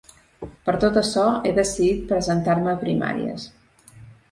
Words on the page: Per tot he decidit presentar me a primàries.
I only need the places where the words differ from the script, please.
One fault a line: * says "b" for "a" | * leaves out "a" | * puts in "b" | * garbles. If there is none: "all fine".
* puts in "açò"